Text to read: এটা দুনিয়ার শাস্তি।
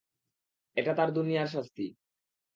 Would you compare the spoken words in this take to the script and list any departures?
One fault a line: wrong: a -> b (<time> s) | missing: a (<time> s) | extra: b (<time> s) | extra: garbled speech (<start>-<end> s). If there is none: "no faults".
extra: তার (0.9 s)